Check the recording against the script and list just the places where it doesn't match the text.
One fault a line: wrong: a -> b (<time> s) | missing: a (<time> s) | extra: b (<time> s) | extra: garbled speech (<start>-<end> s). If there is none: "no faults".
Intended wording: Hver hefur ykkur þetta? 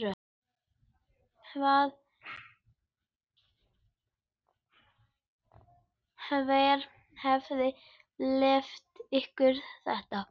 extra: leyft (8.4 s)